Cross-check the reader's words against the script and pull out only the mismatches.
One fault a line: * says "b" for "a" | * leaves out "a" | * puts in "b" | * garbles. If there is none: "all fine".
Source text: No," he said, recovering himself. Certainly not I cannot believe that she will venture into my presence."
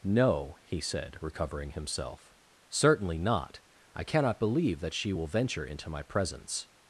all fine